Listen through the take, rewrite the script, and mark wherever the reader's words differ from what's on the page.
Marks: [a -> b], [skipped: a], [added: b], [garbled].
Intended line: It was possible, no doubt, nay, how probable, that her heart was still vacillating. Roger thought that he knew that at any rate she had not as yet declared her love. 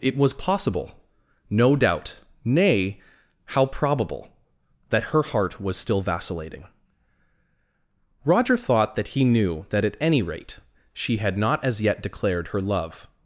It was possible, no doubt, nay, how probable, that her heart was still vacillating. Roger thought that he knew that at any rate she had not as yet declared her love.